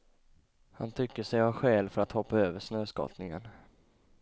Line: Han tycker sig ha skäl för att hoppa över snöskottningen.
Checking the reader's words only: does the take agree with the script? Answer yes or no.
yes